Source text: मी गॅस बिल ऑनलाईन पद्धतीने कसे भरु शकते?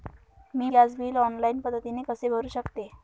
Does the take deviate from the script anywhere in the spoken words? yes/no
no